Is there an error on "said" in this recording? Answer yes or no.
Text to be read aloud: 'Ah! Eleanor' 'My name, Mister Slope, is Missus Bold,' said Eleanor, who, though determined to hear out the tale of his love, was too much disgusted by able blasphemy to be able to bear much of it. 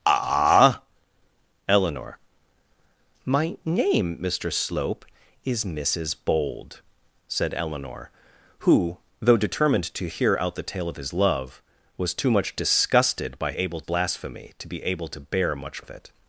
no